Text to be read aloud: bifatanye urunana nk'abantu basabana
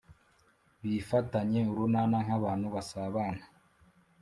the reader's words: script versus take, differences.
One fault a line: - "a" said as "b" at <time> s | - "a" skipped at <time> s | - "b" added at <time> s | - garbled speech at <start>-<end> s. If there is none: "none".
none